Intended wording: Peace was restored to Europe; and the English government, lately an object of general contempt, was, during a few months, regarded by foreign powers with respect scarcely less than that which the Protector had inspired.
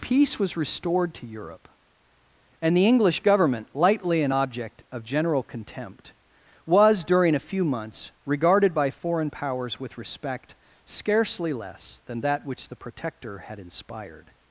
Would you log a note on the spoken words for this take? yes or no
yes